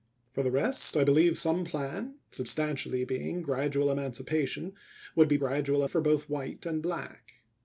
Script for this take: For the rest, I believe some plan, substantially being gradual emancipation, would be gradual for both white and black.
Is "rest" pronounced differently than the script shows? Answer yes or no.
no